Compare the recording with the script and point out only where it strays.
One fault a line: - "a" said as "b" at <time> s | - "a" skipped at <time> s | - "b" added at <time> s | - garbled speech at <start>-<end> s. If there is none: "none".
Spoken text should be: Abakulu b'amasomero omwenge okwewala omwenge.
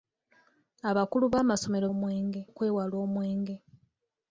none